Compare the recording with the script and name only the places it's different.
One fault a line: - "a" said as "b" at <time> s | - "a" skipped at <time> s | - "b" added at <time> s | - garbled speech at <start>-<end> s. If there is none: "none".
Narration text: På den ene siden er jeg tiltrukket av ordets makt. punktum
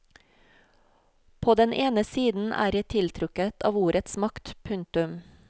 none